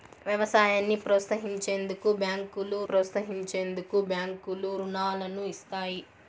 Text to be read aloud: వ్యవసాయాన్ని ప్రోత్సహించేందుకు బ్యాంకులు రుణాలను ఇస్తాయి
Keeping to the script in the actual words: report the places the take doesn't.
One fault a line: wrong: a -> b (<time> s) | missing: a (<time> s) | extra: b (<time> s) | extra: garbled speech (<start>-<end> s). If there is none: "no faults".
extra: ప్రోత్సహించేందుకు బ్యాంకులు (2.9 s)